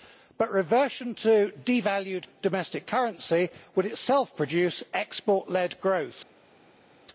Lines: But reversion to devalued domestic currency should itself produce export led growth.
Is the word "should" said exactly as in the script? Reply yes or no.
no